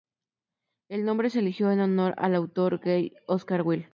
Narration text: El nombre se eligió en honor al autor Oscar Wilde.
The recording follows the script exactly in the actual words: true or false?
false